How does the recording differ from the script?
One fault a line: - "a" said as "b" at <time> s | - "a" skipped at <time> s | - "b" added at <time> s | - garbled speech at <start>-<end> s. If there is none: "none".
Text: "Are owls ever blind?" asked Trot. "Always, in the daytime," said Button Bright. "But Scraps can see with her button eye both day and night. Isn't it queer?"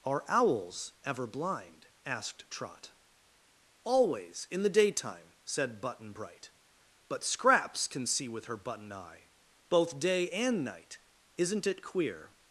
none